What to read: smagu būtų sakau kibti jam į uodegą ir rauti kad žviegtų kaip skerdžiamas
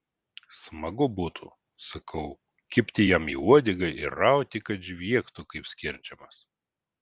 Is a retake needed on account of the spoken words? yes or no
no